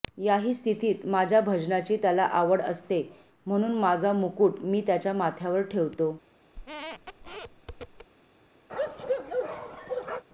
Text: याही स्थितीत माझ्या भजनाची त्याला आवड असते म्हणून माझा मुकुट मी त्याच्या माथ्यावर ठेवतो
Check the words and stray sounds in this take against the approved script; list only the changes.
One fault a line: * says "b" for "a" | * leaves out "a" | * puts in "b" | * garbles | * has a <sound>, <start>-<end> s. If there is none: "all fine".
* has a squeak, 6.5-8.1 s
* has a bark, 8.7-10.2 s